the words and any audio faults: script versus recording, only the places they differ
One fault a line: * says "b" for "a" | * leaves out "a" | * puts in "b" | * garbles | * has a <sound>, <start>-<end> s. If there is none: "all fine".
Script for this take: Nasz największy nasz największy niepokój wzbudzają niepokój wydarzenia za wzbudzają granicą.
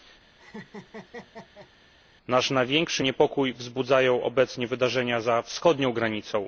* has a laugh, 0.4-1.7 s
* leaves out "nasz największy"
* says "obecnie" for "niepokój"
* says "wschodnią" for "wzbudzają"